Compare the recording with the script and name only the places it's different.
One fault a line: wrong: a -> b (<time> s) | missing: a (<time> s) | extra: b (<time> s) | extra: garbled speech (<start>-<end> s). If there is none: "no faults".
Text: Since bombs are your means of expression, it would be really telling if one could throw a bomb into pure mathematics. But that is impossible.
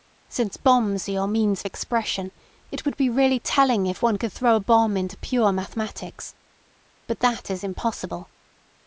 no faults